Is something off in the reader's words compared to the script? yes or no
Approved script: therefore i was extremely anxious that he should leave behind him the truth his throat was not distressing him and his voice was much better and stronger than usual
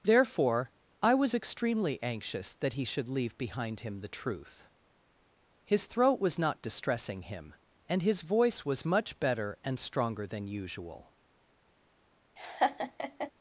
no